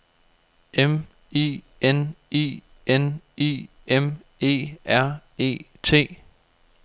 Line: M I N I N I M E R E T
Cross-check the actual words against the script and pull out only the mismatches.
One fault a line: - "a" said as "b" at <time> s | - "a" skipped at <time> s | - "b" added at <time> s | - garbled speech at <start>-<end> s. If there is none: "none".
none